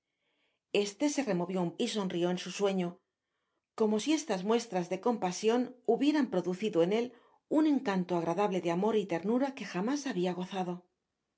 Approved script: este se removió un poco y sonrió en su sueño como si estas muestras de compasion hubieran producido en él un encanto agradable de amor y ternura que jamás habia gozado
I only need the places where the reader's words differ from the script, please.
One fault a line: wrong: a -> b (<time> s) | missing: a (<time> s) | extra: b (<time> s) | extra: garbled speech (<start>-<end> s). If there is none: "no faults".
missing: poco (1.8 s)